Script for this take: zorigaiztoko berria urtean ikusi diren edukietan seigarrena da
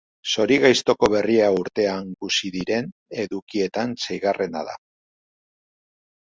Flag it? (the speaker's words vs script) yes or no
no